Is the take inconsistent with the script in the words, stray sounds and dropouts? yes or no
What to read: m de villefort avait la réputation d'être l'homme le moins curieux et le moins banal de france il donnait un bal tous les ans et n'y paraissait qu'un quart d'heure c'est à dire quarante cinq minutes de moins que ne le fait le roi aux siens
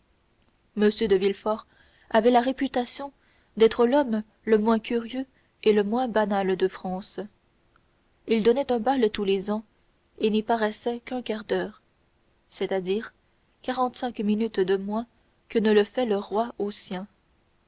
no